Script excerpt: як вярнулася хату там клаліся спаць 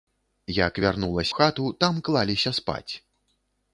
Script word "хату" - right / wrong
right